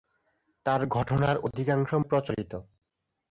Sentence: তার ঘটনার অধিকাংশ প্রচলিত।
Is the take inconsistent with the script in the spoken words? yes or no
no